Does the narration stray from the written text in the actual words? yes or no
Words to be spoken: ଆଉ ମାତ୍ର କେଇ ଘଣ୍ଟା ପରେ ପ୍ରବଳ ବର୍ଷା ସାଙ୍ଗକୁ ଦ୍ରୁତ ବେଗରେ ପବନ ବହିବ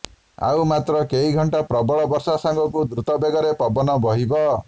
yes